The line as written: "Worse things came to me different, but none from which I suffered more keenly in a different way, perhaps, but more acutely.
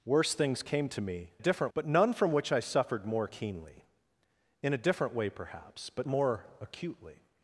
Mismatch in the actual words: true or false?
false